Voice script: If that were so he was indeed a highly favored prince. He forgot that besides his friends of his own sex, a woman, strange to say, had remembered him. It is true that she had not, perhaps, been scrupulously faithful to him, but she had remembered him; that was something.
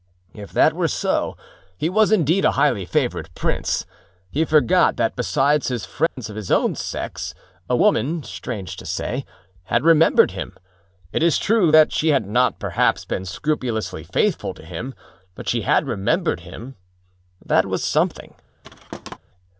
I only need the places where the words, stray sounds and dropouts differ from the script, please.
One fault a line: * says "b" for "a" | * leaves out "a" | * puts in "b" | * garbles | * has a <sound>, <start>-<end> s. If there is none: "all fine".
* has a dropout, 6.1-6.2 s
* has a thud, 18.6-19.2 s